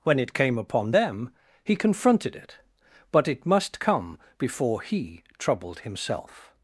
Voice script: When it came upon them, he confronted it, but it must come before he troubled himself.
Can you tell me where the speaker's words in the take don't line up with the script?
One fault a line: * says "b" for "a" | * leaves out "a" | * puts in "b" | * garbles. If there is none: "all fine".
all fine